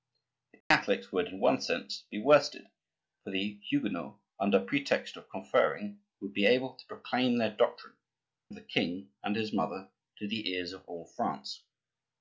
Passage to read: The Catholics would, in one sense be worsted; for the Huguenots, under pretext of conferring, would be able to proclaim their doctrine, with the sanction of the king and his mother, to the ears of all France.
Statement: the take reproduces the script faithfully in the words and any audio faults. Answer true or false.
false